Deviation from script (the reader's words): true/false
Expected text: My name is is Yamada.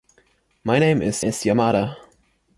false